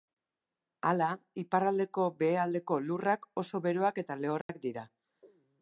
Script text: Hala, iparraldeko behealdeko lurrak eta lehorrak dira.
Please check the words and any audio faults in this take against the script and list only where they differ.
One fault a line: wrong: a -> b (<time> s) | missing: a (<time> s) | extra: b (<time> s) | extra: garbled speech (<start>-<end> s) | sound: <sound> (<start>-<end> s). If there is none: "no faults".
extra: oso beroak (3.4 s)
sound: dropout (4.4-4.5 s)